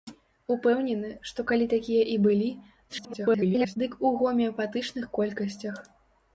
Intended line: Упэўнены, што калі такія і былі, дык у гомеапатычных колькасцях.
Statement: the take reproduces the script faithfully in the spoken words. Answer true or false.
false